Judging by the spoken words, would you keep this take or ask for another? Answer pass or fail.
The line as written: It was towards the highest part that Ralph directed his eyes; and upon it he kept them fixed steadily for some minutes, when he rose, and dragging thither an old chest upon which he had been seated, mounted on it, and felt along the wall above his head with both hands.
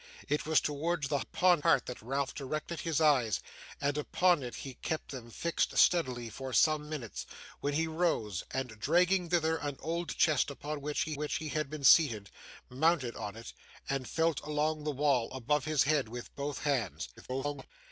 fail